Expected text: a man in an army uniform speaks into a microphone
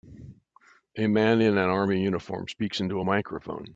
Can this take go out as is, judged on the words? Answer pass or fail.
pass